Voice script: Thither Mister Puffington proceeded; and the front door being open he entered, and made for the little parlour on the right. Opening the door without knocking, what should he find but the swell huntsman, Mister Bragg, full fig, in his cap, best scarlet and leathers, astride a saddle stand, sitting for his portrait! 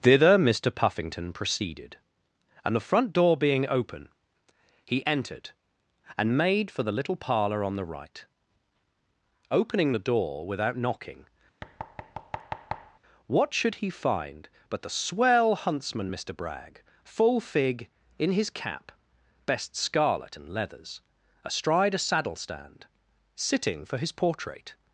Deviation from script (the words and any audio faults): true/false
true